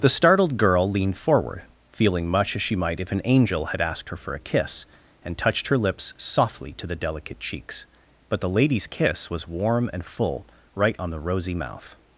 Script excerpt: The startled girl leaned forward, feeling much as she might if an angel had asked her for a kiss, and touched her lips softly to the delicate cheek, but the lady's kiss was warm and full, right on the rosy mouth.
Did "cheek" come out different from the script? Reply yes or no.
yes